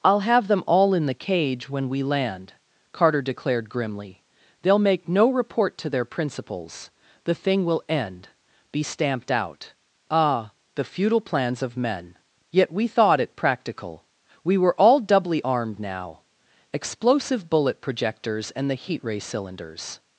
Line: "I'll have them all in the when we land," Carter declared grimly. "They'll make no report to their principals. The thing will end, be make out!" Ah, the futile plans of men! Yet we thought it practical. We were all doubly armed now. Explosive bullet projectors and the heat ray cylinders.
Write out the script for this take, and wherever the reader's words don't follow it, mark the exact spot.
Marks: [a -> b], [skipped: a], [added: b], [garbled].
"I'll have them all in the [added: cage] when we land," Carter declared grimly. "They'll make no report to their principals. The thing will end, be [make -> stamped] out!" Ah, the futile plans of men! Yet we thought it practical. We were all doubly armed now. Explosive bullet projectors and the heat ray cylinders.